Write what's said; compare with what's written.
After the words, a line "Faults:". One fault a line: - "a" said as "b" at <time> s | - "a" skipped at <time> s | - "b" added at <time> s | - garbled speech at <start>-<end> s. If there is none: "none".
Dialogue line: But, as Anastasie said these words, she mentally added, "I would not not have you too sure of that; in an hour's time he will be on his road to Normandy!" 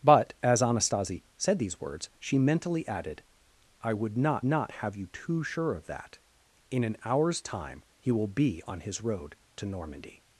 But, as Anastasie said these words, she mentally added, "I would not not have you too sure of that; in an hour's time he will be on his road to Normandy!"
Faults:
none